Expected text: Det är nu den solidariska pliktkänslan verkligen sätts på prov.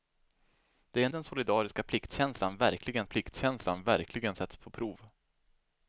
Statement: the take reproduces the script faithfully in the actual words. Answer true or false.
false